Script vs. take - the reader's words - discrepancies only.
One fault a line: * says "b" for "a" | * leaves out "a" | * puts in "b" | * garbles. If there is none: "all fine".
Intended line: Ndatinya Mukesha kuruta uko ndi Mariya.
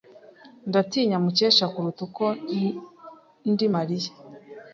all fine